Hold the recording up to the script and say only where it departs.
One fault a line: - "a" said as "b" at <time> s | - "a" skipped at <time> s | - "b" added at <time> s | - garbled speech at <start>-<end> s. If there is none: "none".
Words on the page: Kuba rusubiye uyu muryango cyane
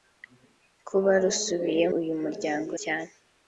none